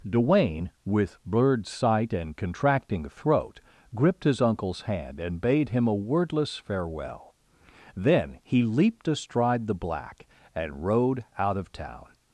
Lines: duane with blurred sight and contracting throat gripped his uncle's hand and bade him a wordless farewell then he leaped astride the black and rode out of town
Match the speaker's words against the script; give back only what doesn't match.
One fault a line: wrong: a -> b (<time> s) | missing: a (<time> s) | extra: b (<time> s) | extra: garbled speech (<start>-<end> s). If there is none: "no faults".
no faults